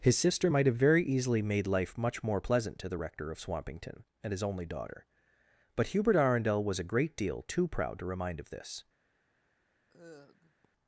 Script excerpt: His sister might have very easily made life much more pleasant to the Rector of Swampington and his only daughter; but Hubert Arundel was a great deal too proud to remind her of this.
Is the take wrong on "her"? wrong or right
wrong